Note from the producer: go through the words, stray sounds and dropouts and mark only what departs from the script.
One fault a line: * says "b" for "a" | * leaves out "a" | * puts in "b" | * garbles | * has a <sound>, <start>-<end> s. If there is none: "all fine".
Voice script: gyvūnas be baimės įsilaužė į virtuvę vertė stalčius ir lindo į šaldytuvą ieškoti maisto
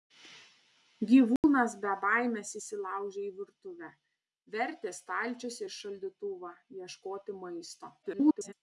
* has a dropout, 1.4-1.4 s
* leaves out "ir lindo"
* garbles